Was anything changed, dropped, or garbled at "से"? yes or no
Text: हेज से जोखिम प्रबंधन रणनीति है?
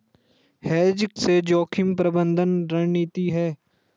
no